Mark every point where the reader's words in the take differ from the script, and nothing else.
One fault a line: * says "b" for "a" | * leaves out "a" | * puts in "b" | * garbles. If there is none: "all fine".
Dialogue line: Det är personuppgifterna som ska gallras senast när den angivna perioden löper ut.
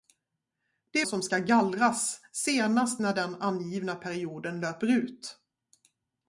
* leaves out "är personuppgifterna"